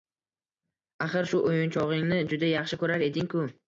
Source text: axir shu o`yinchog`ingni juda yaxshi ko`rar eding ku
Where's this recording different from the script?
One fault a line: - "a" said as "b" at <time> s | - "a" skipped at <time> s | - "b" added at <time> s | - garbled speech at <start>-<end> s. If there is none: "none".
none